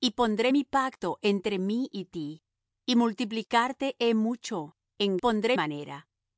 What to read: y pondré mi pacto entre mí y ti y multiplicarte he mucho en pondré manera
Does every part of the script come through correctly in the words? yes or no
yes